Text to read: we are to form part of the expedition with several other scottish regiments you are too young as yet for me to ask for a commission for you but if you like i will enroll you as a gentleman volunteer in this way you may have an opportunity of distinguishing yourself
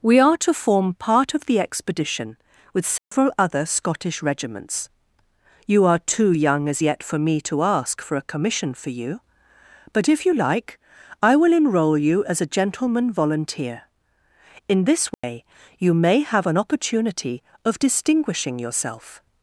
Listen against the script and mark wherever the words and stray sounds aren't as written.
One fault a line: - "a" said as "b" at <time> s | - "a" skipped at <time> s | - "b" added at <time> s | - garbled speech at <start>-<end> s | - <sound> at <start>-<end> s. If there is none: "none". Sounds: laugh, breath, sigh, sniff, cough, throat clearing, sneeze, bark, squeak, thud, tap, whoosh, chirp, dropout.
- dropout at 3.0-3.1 s
- dropout at 15.1-15.2 s